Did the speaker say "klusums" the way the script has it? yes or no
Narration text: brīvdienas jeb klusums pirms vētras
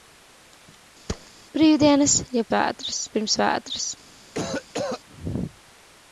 no